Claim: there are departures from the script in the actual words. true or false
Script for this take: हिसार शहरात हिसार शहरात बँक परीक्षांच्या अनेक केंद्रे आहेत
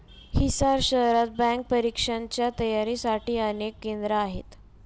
true